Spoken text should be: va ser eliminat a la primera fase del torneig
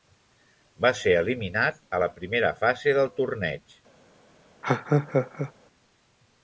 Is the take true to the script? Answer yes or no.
yes